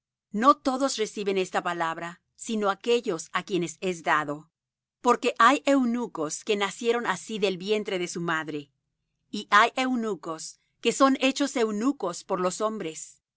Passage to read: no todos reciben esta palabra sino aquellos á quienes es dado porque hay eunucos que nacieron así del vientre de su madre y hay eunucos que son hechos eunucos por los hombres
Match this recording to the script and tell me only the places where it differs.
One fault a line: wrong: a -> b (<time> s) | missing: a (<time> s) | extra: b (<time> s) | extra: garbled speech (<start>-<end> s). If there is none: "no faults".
no faults